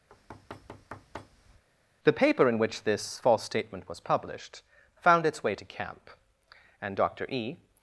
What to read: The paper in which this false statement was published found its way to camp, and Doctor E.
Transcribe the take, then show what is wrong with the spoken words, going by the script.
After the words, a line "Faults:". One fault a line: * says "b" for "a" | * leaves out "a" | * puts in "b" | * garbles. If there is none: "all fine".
The paper in which this false statement was published found its way to camp, and Doctor E.
Faults:
all fine